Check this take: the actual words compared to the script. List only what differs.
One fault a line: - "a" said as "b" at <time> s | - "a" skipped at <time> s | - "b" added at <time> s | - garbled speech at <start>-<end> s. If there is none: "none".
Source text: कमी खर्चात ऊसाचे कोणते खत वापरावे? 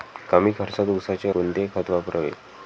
none